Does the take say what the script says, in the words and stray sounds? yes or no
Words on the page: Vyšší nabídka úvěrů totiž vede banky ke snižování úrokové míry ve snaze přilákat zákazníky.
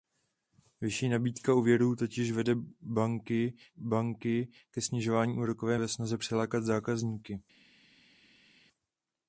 no